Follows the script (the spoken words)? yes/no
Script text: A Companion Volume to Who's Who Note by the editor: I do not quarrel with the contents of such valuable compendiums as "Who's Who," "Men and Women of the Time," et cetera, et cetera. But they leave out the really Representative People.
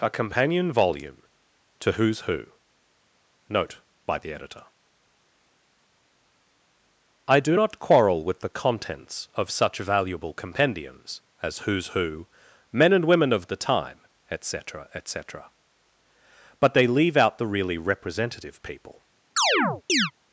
yes